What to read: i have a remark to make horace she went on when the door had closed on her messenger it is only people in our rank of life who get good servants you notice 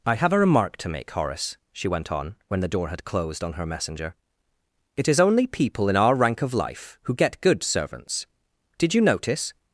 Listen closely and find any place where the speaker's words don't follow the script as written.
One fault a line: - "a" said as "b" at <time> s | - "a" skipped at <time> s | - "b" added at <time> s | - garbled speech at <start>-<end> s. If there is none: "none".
- "did" added at 8.8 s